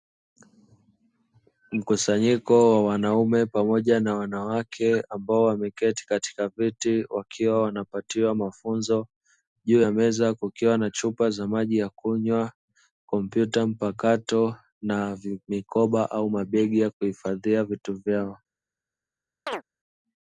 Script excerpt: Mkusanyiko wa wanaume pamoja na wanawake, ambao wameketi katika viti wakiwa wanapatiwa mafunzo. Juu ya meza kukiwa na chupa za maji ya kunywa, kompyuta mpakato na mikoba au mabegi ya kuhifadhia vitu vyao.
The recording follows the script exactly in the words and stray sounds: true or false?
false